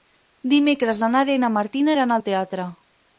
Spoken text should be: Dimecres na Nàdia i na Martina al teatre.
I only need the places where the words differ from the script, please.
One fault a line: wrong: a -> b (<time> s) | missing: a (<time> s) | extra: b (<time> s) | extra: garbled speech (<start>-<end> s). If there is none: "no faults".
extra: iran (2.0 s)